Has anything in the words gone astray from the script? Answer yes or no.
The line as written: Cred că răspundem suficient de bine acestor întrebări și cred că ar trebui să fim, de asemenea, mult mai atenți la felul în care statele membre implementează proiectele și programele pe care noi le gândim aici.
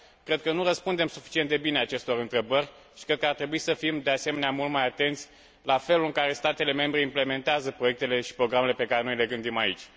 yes